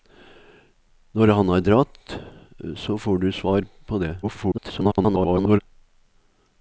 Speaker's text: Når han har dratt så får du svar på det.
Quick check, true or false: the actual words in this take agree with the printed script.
false